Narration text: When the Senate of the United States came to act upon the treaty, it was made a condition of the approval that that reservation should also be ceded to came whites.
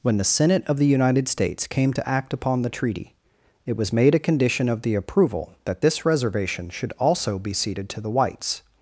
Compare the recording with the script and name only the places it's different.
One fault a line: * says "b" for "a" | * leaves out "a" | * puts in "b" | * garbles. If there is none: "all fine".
* says "this" for "that"
* says "the" for "came"